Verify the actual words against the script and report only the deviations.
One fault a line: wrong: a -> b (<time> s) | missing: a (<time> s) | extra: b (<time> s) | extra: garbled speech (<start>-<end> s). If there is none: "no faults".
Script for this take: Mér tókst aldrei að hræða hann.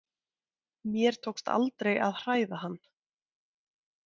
no faults